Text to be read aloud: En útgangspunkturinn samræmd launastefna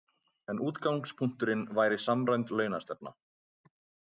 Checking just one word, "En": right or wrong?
right